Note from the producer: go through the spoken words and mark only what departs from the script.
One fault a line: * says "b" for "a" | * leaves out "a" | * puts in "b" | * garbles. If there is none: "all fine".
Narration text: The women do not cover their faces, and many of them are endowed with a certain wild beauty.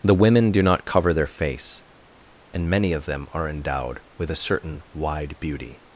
* says "face" for "faces"
* says "wide" for "wild"